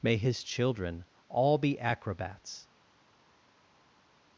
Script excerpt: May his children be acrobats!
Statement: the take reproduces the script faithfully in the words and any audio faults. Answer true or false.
false